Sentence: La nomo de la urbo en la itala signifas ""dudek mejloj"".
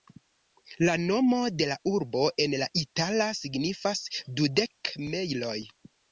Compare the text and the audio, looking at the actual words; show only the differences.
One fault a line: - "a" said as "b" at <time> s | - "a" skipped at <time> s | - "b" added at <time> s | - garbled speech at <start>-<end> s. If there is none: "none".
none